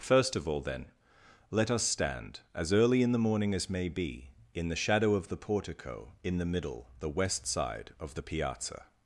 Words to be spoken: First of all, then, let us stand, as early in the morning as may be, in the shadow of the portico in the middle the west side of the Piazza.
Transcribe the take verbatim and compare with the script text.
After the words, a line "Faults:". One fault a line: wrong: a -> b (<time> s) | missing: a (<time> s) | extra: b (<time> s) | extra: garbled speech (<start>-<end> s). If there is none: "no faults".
First of all, then, let us stand, as early in the morning as may be, in the shadow of the portico in the middle the west side of the Piazza.
Faults:
no faults